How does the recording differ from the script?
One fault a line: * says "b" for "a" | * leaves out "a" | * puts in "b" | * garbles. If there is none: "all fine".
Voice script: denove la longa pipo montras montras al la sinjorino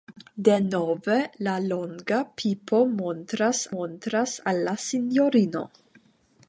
all fine